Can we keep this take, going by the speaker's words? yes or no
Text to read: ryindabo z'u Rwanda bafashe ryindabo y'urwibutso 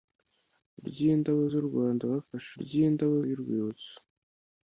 yes